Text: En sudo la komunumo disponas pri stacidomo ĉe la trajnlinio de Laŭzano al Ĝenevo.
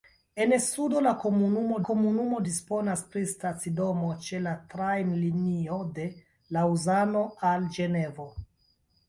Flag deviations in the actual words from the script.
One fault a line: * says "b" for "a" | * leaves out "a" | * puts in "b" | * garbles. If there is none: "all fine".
* puts in "komunumo"